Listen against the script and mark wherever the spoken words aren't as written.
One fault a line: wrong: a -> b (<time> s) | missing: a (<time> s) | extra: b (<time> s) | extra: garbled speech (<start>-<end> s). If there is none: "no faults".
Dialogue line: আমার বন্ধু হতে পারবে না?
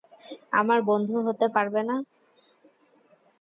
no faults